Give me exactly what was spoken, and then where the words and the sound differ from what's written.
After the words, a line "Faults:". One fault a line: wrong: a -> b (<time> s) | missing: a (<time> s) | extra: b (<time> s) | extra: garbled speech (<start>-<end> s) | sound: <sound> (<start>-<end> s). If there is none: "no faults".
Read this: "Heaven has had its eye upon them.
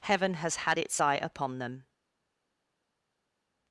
"Heaven has had its eye upon them.
Faults:
no faults